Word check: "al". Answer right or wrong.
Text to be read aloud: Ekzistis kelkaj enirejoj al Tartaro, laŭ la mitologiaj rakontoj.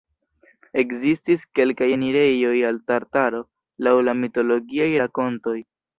right